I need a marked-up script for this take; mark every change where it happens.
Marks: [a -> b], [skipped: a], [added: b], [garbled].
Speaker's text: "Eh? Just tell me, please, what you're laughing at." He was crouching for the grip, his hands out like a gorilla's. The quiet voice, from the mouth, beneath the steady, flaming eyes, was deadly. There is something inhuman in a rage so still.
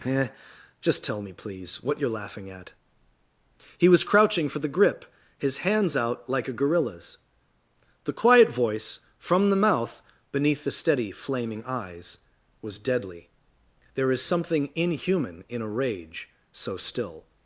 "Eh? Just tell me, please, what you're laughing at." He was crouching for the grip, his hands out like a gorilla's. The quiet voice, from the mouth, beneath the steady, flaming eyes, was deadly. There is something inhuman in a rage so still.